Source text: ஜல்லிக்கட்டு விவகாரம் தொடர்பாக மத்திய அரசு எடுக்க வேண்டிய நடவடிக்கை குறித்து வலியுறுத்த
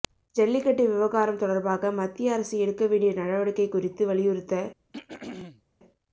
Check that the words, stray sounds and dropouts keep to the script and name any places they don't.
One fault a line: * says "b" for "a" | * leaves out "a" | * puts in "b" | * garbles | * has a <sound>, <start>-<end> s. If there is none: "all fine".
* has a throat clearing, 4.9-5.6 s